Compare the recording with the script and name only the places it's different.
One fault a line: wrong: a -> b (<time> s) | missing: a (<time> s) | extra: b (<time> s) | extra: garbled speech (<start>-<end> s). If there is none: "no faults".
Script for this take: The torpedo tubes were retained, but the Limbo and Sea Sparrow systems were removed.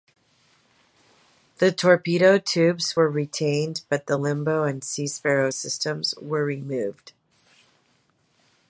no faults